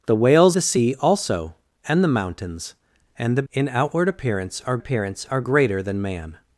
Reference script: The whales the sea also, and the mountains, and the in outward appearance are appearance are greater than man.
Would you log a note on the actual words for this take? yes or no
no